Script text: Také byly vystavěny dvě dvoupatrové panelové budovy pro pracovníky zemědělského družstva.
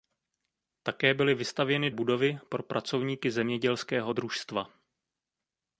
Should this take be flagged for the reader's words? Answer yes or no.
yes